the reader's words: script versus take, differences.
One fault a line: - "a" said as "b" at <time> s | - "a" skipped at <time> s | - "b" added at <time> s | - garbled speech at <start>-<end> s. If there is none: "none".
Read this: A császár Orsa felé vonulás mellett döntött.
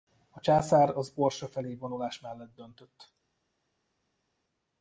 - "az" added at 1.0 s